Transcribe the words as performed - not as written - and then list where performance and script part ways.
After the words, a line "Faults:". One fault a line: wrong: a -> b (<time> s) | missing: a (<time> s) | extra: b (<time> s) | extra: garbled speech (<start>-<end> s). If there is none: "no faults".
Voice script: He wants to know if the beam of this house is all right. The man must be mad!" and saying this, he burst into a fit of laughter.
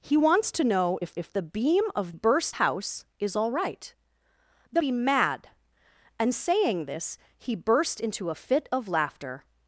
He wants to know if if the beam of burst house is all right. The be mad!" and saying this, he burst into a fit of laughter.
Faults:
extra: if (1.2 s)
wrong: this -> burst (2.1 s)
missing: man must (4.8 s)